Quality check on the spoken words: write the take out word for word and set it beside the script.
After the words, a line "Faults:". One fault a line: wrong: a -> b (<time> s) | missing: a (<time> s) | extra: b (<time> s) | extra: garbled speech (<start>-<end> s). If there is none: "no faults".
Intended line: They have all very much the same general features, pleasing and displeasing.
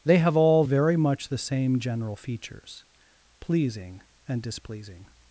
They have all very much the same general features, pleasing and displeasing.
Faults:
no faults